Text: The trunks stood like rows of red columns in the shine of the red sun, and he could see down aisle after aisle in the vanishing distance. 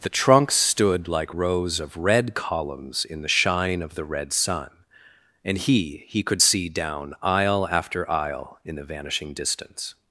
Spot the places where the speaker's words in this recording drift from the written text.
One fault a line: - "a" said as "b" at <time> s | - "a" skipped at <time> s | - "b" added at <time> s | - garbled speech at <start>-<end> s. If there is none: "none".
- "he" added at 6.1 s